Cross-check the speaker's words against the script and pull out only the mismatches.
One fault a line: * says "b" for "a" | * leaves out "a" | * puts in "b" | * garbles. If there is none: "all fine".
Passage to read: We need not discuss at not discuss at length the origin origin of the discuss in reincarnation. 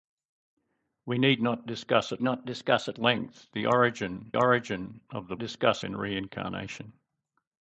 all fine